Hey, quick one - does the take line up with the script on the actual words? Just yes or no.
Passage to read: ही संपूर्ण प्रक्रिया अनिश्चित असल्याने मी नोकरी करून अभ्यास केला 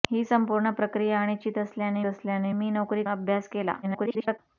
no